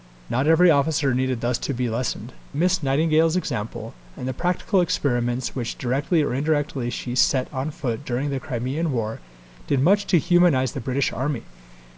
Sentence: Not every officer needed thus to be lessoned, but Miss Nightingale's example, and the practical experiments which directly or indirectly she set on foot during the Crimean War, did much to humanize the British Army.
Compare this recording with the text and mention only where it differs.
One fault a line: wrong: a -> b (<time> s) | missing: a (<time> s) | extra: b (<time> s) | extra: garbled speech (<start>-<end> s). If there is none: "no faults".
missing: but (2.3 s)